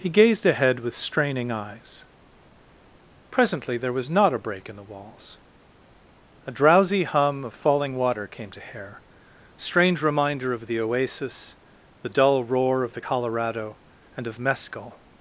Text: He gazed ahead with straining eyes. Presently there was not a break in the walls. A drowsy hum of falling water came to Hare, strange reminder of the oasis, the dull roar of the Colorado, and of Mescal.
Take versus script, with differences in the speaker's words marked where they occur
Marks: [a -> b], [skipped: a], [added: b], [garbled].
He gazed ahead with straining eyes. Presently there was not a break in the walls. A drowsy hum of falling water came to Hare, strange reminder of the oasis, the dull roar of the Colorado, and of Mescal.